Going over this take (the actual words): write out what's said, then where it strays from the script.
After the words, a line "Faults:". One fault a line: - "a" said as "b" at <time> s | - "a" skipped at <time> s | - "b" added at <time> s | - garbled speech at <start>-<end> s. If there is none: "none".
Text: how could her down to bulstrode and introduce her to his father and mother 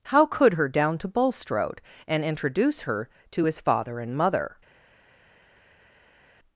how could her down to bulstrode and introduce her to his father and mother
Faults:
none